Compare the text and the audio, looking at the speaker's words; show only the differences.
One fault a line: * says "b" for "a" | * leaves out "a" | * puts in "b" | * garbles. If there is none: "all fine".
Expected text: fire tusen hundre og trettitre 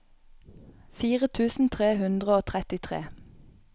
* puts in "tre"